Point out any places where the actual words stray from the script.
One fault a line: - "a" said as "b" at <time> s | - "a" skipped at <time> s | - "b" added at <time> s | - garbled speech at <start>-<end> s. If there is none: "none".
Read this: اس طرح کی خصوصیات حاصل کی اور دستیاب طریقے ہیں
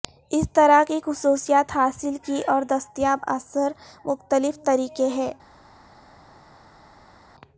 - "اثر مختلف" added at 3.3 s